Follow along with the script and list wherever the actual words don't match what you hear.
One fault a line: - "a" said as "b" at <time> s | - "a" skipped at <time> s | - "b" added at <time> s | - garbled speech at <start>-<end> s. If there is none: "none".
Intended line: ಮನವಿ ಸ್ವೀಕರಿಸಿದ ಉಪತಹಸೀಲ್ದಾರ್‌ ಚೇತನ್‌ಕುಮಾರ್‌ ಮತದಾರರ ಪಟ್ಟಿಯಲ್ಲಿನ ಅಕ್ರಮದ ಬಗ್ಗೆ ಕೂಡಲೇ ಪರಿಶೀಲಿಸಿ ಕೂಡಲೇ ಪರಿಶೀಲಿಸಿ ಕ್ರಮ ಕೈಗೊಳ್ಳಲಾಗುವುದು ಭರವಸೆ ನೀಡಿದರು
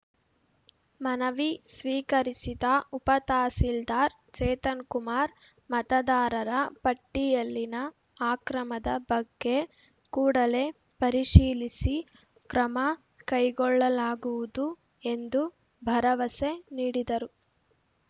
- "ಕೂಡಲೇ ಪರಿಶೀಲಿಸಿ" skipped at 11.9 s
- "ಎಂದು" added at 15.1 s